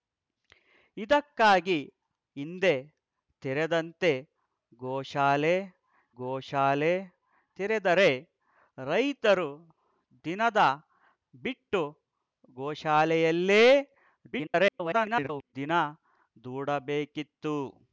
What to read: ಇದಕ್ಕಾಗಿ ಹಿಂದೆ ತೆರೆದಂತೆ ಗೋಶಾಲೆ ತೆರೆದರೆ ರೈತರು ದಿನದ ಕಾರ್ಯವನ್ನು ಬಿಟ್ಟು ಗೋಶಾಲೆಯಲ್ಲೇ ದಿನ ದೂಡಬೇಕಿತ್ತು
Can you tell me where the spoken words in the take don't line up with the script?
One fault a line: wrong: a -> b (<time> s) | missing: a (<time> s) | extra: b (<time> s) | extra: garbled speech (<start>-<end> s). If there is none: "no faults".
extra: ಗೋಶಾಲೆ (6.2 s)
missing: ಕಾರ್ಯವನ್ನು (10.6 s)
extra: garbled speech (14.3-15.5 s)